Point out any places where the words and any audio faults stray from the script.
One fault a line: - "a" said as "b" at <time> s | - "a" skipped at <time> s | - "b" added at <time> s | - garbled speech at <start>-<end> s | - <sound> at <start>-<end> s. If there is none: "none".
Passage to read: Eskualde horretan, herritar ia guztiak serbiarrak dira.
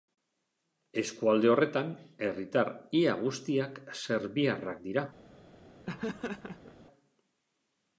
- laugh at 5.9-6.8 s